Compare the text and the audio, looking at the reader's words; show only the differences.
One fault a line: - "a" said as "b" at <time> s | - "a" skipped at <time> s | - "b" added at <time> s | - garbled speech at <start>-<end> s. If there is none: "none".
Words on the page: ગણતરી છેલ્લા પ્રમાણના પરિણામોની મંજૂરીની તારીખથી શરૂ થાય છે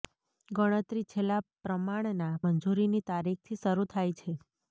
- "પરિણામોની" skipped at 2.3 s